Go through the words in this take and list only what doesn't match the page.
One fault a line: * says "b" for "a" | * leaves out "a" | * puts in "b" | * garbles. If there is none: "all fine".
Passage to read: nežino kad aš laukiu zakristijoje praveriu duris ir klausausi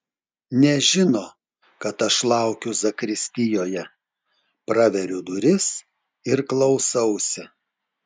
all fine